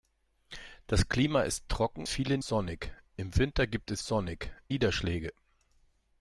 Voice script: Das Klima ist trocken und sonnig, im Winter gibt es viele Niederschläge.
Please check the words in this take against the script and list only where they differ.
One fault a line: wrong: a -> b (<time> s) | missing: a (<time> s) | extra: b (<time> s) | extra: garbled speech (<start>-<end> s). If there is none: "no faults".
wrong: und -> viele (2.1 s)
wrong: viele -> sonnig (4.0 s)